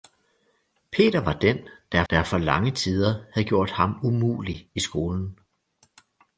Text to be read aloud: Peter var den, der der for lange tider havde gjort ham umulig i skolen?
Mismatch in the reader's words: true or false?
false